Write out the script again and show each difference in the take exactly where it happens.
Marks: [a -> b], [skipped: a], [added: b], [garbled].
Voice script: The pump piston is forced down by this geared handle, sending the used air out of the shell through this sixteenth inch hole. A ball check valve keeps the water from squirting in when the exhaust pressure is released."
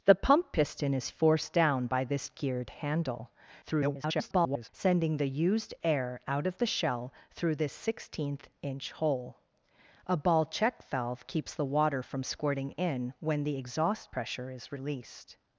The pump piston is forced down by this geared handle, [garbled] sending the used air out of the shell through this sixteenth inch hole. A ball check valve keeps the water from squirting in when the exhaust pressure is released."